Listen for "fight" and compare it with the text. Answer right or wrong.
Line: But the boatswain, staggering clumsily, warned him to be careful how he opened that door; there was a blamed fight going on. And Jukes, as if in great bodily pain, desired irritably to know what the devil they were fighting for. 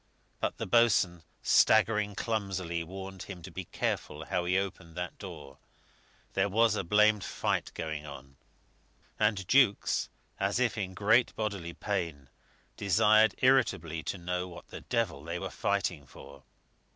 right